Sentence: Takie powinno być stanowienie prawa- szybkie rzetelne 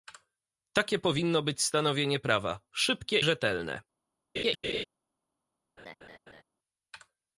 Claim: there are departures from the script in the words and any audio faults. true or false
true